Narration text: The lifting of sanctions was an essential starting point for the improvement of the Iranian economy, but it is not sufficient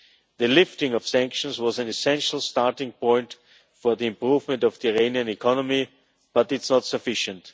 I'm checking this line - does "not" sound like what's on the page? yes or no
yes